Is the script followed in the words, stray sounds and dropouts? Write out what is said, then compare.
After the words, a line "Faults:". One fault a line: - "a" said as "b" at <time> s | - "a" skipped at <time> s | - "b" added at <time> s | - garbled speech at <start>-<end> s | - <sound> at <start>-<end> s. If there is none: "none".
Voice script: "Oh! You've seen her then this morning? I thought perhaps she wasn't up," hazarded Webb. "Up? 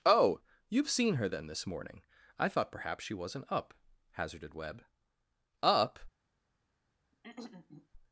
"Oh! You've seen her then this morning? I thought perhaps she wasn't up," hazarded Webb. "Up?
Faults:
- throat clearing at 7.1-7.9 s